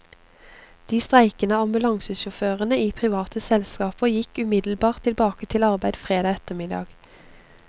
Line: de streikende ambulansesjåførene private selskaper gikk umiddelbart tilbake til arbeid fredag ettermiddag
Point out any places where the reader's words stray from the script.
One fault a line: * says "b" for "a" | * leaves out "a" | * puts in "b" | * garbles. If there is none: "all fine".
* puts in "i"